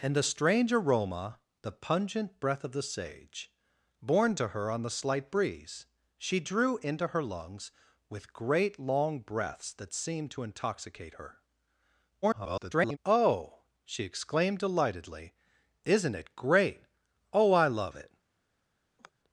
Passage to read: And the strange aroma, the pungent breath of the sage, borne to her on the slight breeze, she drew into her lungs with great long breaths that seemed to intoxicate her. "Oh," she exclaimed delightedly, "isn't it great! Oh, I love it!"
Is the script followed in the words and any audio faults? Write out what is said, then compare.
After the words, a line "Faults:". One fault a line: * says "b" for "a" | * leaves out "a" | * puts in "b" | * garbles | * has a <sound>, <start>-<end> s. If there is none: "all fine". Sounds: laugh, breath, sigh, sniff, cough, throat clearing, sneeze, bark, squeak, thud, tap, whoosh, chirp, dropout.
And the strange aroma, the pungent breath of the sage, borne to her on the slight breeze, she drew into her lungs with great long breaths that seemed to intoxicate her. [garbled] "Oh," she exclaimed delightedly, "isn't it great! Oh, I love it!"
Faults:
* garbles
* has a sigh, 19.0-19.1 s